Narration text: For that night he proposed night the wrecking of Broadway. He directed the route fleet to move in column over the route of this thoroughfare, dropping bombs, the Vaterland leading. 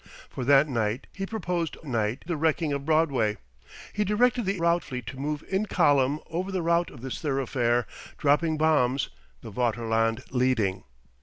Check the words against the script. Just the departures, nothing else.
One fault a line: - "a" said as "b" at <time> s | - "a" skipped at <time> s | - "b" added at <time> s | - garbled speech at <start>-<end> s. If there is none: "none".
none